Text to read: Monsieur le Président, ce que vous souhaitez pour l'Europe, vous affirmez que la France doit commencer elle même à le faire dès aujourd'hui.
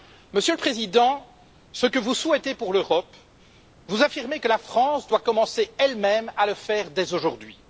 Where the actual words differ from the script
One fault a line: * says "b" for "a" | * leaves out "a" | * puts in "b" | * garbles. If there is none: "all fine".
all fine